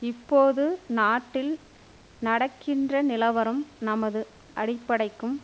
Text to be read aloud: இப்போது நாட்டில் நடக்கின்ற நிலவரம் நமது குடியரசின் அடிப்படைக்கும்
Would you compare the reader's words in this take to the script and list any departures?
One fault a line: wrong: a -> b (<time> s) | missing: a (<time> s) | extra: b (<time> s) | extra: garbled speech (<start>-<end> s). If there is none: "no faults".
missing: குடியரசின் (4.2 s)